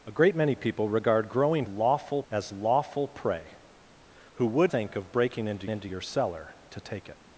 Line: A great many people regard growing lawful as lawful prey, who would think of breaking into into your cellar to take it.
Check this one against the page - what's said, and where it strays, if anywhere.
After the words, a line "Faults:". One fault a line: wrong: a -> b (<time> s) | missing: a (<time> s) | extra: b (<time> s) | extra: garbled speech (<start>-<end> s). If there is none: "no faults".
A great many people regard growing lawful as lawful prey, who would think of breaking into into your cellar to take it.
Faults:
no faults